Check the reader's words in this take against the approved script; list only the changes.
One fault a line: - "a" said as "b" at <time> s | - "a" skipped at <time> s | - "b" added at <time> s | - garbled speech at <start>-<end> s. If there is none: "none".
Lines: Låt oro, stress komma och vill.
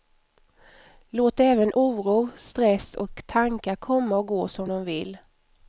- "även" added at 1.4 s
- "och tankar" added at 2.9 s
- "gå som de" added at 4.3 s